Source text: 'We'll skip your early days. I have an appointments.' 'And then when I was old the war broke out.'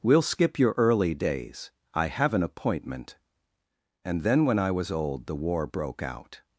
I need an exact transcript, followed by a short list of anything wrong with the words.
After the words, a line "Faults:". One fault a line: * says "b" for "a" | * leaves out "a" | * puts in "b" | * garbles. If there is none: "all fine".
'We'll skip your early days. I have an appointment.' 'And then when I was old the war broke out.'
Faults:
* says "appointment" for "appointments"